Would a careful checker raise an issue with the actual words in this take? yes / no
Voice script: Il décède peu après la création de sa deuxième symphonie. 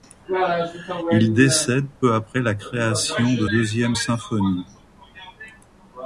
yes